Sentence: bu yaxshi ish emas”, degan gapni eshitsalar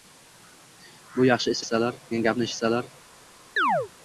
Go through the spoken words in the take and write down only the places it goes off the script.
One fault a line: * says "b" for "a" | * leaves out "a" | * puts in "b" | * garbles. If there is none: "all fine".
* says "eshitsalar" for "emas"